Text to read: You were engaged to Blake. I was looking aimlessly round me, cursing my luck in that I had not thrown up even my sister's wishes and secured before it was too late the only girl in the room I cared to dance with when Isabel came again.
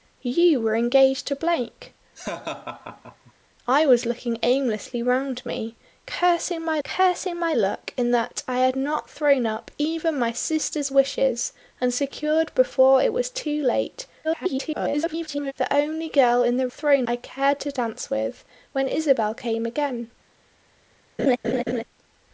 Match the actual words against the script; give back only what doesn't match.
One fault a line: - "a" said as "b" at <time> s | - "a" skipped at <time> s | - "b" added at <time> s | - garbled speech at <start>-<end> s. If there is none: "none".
- "cursing my" added at 6.8 s
- garbled speech at 14.2-15.5 s
- "room" said as "thrown" at 16.7 s